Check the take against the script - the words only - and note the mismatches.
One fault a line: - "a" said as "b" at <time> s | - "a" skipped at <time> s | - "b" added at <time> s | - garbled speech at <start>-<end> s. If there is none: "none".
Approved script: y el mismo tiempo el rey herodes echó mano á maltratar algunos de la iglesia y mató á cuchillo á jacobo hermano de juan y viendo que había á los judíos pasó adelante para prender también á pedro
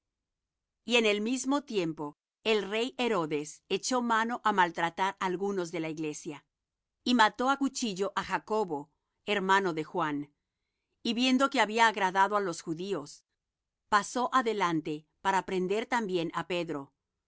- "en" added at 0.9 s
- "agradado" added at 11.9 s